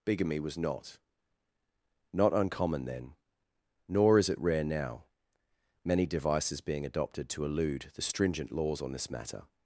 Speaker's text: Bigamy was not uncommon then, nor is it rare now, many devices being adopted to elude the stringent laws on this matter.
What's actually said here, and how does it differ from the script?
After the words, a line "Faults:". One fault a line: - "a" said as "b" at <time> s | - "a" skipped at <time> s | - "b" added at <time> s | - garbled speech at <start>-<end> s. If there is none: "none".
Bigamy was not not uncommon then, nor is it rare now, many devices being adopted to elude the stringent laws on this matter.
Faults:
- "not" added at 2.1 s